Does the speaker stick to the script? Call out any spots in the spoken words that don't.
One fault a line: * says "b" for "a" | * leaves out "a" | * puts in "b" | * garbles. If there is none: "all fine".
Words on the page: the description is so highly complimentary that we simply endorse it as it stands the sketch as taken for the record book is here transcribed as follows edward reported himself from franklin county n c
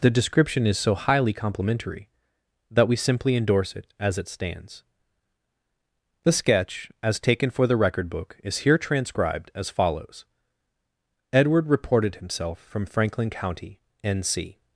all fine